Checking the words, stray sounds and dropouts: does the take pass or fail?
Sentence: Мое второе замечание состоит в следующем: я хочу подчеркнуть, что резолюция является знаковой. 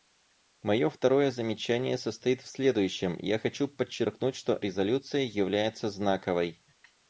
pass